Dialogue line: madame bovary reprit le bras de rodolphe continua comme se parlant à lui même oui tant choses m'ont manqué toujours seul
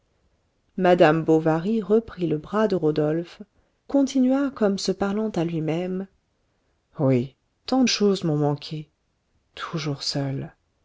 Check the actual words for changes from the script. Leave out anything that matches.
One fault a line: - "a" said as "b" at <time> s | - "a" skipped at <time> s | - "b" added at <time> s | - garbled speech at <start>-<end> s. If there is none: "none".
none